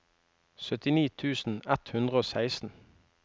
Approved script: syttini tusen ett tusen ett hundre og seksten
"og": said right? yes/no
yes